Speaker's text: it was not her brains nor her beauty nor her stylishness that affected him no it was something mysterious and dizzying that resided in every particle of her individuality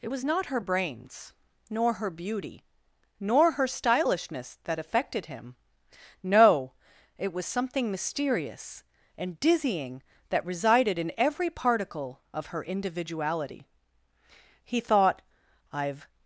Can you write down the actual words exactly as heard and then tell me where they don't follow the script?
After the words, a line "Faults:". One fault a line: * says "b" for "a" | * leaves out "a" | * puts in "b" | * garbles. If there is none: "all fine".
it was not her brains nor her beauty nor her stylishness that affected him no it was something mysterious and dizzying that resided in every particle of her individuality he thought i've
Faults:
* puts in "he thought i've"